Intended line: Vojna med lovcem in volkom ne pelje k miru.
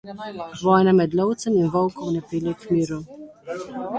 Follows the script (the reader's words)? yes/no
yes